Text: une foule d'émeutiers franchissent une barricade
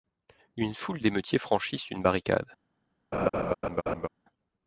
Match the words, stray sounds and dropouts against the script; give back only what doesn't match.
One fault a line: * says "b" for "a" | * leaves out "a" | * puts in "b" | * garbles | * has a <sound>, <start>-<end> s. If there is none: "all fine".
* has a laugh, 3.1-4.1 s